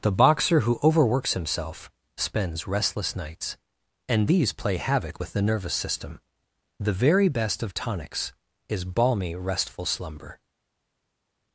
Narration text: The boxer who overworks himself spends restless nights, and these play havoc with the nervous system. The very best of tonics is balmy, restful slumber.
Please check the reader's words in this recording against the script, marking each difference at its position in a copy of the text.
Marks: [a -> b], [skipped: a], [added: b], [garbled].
The boxer who overworks himself spends restless nights, and these play havoc with the nervous system. The very best of tonics is balmy, restful slumber.